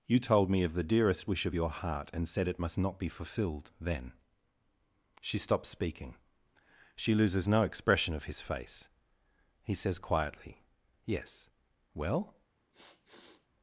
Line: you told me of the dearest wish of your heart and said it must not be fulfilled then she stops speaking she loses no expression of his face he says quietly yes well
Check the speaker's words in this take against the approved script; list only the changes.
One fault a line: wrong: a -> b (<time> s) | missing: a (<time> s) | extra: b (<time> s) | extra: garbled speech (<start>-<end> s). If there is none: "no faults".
no faults